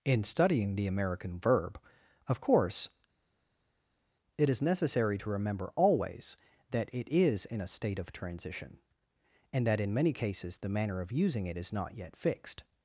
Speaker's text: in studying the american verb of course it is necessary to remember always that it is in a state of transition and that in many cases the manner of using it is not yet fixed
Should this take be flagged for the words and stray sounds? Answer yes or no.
no